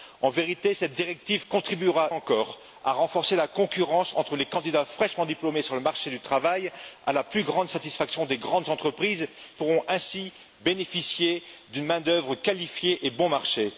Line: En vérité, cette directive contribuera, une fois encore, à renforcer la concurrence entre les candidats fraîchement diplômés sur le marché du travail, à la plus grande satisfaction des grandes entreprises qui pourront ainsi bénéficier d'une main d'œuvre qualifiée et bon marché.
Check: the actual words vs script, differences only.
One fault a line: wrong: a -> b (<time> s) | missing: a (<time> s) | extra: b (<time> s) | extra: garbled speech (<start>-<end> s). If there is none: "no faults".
missing: une fois (2.1 s)
missing: qui (9.3 s)